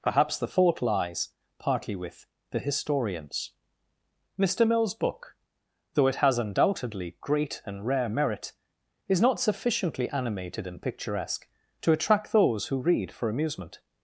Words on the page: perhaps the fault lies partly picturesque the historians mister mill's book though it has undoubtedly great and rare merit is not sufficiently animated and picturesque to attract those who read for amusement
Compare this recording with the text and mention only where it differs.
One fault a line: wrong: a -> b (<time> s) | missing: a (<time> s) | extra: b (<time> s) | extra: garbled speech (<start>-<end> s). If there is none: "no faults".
wrong: picturesque -> with (2.0 s)